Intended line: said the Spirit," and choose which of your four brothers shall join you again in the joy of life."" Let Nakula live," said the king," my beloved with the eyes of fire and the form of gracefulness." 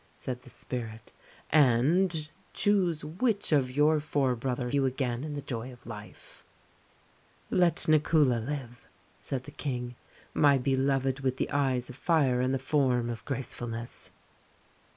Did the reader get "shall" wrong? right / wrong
wrong